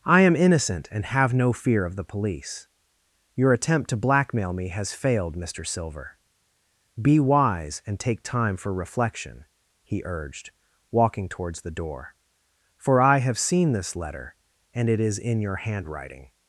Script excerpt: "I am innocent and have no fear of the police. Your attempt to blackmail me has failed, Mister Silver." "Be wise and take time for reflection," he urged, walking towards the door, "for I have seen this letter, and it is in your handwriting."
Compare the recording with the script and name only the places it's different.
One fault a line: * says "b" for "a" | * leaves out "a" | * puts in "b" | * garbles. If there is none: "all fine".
all fine